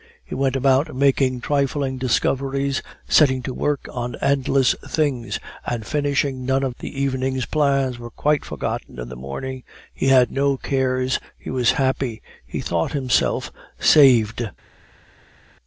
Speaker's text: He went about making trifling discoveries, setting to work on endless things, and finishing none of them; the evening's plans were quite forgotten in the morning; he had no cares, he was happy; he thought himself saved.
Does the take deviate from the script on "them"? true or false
true